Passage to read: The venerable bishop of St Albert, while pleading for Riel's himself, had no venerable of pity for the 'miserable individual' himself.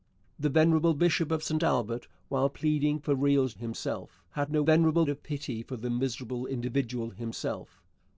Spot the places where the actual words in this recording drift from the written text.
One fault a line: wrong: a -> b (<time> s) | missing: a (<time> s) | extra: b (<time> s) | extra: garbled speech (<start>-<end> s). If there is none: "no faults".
no faults